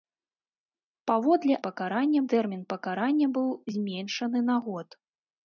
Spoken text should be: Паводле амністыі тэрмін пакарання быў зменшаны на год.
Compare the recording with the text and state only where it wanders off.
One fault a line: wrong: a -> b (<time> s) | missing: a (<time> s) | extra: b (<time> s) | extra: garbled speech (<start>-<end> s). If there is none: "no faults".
wrong: амністыі -> пакарання (1.7 s)